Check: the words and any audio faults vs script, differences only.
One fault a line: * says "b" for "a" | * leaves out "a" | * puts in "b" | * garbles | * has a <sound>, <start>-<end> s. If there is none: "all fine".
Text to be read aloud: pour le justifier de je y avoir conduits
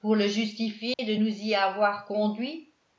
* has a dropout, 0.9-1.0 s
* says "nous" for "je"